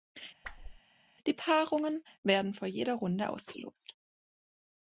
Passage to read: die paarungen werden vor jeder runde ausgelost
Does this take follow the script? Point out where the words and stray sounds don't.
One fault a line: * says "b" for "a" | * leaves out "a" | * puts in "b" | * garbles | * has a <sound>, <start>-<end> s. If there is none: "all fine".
* has a whoosh, 0.4-0.8 s